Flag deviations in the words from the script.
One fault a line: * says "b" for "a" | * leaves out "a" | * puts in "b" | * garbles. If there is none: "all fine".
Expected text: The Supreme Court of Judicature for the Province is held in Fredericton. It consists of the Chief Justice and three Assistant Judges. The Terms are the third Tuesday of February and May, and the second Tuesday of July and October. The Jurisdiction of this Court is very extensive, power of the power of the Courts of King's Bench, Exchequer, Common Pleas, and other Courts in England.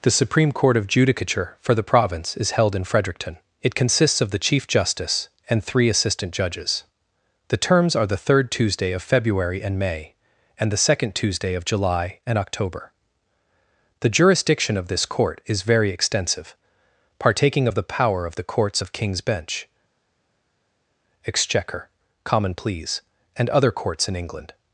* says "partaking" for "power"